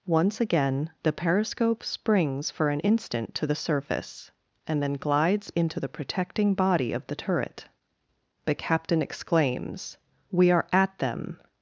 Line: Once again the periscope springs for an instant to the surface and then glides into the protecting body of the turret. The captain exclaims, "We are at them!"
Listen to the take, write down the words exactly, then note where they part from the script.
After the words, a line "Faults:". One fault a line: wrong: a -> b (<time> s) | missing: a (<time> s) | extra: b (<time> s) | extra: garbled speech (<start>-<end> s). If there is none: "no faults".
Once again the periscope springs for an instant to the surface and then glides into the protecting body of the turret. The captain exclaims, "We are at them!"
Faults:
no faults